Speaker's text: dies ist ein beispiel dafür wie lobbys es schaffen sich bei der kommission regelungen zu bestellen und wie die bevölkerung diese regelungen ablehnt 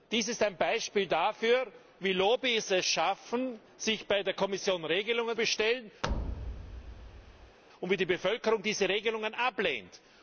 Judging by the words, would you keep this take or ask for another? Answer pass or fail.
fail